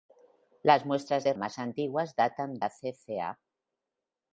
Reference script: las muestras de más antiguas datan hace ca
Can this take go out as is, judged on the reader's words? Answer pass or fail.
pass